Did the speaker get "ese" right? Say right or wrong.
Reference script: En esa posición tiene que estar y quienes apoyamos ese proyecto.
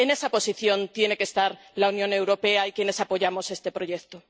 wrong